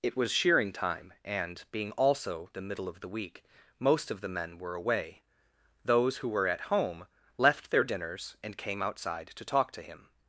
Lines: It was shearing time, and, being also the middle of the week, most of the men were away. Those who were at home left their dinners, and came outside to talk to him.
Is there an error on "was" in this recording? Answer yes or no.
no